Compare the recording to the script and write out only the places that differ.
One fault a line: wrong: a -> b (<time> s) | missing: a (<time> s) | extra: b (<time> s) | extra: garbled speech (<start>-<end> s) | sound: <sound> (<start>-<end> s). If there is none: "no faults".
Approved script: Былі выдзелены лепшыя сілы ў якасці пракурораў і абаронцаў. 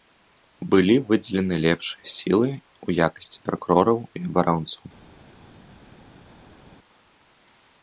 no faults